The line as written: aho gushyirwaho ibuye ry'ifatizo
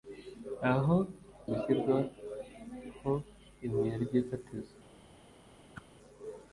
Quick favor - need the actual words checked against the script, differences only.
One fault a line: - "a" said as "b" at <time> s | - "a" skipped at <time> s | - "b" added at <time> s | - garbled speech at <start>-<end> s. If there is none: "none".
none